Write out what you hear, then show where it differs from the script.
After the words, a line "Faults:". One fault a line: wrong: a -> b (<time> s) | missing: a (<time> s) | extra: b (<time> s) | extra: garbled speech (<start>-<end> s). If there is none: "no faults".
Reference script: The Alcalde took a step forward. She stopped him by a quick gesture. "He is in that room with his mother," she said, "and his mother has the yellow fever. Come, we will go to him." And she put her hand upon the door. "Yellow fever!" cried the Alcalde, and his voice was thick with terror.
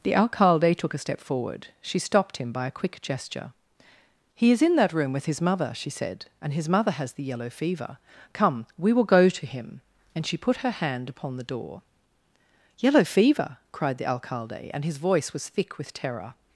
The Alcalde took a step forward. She stopped him by a quick gesture. "He is in that room with his mother," she said, "and his mother has the yellow fever. Come, we will go to him." And she put her hand upon the door. "Yellow fever!" cried the Alcalde, and his voice was thick with terror.
Faults:
no faults